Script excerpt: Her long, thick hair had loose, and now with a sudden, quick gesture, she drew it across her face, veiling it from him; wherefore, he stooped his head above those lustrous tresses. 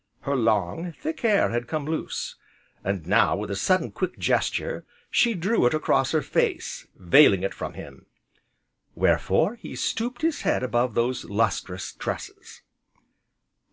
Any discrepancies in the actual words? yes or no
yes